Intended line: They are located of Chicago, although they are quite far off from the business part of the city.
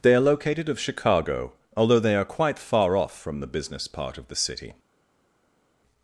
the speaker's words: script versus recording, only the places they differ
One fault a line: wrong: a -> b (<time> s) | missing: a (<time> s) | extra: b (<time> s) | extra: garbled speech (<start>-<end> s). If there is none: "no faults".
no faults